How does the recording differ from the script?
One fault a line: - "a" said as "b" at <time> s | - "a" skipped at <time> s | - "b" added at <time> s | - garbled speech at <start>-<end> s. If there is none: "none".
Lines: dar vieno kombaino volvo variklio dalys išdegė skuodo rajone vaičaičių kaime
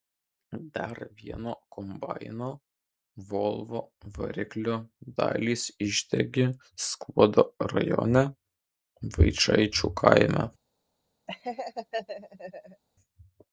none